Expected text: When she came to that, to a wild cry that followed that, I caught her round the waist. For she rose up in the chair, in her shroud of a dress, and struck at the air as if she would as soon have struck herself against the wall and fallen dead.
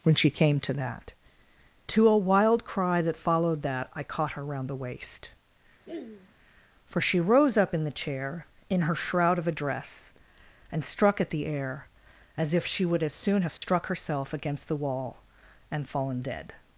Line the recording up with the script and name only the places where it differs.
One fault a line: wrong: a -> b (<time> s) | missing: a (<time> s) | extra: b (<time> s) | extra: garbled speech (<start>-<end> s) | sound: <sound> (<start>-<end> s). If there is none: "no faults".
sound: throat clearing (5.9-6.4 s)
sound: dropout (13.6-13.6 s)